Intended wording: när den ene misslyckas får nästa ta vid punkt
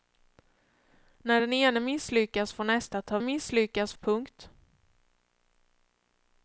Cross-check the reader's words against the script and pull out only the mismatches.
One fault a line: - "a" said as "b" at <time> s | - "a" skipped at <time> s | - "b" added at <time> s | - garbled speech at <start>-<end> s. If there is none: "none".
- "vid" said as "misslyckas" at 3.2 s